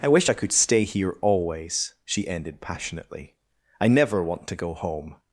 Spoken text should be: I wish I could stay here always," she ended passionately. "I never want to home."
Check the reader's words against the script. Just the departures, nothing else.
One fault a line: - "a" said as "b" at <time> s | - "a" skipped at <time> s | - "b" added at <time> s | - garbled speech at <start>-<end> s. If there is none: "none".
- "go" added at 4.5 s